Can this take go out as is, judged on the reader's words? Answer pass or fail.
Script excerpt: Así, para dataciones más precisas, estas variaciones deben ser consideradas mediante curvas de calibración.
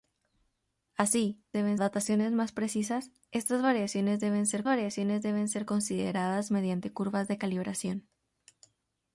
fail